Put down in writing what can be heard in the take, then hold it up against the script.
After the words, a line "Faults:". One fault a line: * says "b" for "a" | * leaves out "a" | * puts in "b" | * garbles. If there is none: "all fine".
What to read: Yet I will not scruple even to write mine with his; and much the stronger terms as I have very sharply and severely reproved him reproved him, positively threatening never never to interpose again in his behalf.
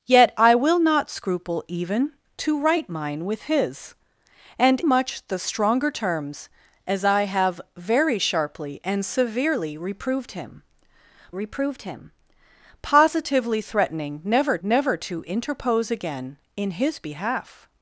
Yet I will not scruple even to write mine with his; and much the stronger terms as I have very sharply and severely reproved him reproved him, positively threatening never never to interpose again in his behalf.
Faults:
all fine